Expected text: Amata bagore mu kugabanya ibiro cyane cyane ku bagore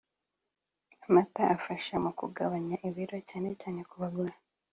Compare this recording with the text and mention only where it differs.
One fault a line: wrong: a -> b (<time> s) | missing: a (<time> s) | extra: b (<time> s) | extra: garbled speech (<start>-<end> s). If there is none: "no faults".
wrong: bagore -> afasha (1.6 s)